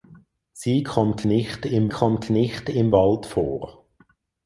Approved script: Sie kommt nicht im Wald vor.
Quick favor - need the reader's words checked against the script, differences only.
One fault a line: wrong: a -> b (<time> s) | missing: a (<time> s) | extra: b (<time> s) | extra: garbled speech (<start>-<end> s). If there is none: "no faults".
extra: kommt nicht im (1.9 s)